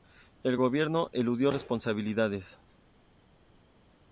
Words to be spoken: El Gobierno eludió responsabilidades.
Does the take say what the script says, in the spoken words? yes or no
yes